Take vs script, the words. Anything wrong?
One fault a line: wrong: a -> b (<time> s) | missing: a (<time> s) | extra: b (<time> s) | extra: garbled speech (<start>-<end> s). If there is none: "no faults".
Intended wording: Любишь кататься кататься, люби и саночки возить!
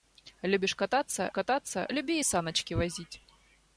no faults